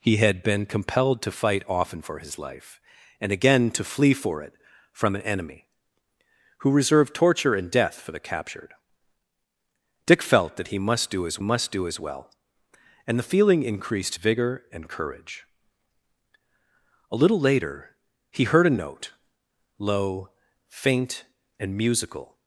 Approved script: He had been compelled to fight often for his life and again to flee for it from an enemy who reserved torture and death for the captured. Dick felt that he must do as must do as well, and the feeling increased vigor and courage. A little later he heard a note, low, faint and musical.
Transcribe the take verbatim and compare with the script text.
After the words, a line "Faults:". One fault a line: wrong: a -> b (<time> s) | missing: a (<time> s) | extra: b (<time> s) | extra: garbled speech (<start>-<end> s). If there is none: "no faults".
He had been compelled to fight often for his life and again to flee for it from an enemy who reserved torture and death for the captured. Dick felt that he must do as must do as well, and the feeling increased vigor and courage. A little later he heard a note, low, faint and musical.
Faults:
no faults